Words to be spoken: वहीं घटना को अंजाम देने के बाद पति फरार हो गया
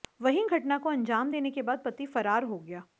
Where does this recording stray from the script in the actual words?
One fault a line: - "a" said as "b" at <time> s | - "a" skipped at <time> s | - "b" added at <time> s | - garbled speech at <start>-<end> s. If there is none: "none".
none